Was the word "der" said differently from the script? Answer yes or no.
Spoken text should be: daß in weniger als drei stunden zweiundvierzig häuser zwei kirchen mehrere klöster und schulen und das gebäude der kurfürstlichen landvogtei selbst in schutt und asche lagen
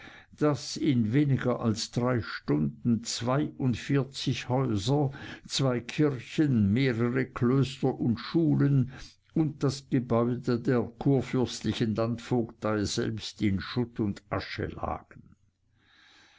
no